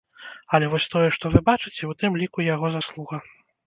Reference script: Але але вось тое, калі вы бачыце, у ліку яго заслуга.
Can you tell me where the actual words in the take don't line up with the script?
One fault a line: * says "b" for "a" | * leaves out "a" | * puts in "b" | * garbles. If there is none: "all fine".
* leaves out "але"
* says "што" for "калі"
* puts in "тым"